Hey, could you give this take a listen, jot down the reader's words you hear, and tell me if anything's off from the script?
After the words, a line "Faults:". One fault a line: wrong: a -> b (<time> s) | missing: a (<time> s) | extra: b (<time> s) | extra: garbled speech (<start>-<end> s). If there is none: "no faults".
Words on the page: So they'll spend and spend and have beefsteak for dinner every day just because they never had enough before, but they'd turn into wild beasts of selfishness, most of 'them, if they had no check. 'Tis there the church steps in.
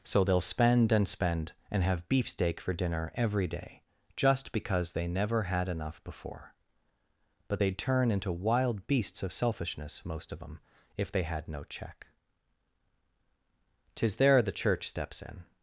So they'll spend and spend and have beefsteak for dinner every day just because they never had enough before, but they'd turn into wild beasts of selfishness, most of 'them, if they had no check. 'Tis there the church steps in.
Faults:
no faults